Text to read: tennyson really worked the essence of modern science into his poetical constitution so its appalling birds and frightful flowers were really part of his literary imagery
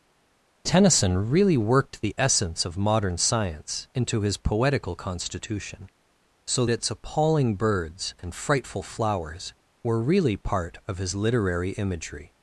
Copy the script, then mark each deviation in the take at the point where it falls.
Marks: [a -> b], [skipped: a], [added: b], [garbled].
tennyson really worked the essence of modern science into his poetical constitution so its appalling birds and frightful flowers were really part of his literary imagery